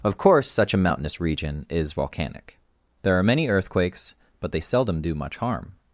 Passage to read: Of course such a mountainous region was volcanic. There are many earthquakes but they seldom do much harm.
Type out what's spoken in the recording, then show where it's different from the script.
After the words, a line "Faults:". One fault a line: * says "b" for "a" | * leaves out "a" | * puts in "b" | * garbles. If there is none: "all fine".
Of course such a mountainous region is volcanic. There are many earthquakes but they seldom do much harm.
Faults:
* says "is" for "was"